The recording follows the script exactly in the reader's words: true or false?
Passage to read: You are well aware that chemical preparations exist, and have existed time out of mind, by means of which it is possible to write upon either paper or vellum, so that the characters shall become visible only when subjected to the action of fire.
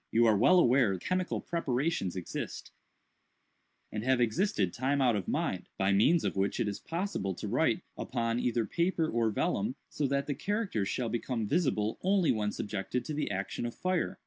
false